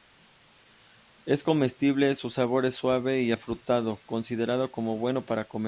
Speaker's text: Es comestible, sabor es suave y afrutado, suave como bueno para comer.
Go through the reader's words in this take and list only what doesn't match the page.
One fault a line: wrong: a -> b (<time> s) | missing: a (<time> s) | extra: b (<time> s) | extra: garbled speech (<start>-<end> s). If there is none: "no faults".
extra: su (2.2 s)
wrong: suave -> considerado (4.1 s)